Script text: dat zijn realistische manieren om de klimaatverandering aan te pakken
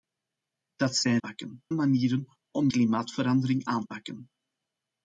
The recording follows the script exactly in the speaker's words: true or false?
false